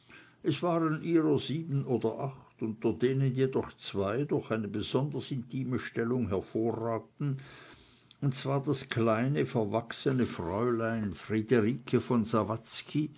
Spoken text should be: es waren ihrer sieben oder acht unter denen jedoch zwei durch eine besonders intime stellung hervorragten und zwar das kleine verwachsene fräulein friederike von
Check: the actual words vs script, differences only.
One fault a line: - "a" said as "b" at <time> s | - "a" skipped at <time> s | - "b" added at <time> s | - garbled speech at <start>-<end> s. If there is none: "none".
none